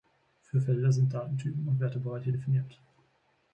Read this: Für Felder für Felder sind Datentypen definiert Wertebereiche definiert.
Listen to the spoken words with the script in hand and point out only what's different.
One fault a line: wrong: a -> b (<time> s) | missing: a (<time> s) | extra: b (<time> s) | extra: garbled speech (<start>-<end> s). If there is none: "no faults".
missing: für Felder (0.9 s)
wrong: definiert -> und (1.7 s)